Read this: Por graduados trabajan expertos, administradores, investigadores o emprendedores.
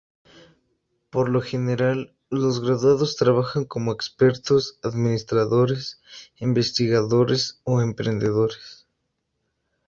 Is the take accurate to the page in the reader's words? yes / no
no